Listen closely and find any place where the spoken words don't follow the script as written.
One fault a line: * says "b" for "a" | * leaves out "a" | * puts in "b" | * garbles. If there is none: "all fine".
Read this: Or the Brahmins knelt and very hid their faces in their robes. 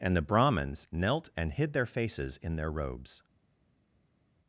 * says "And" for "Or"
* leaves out "very"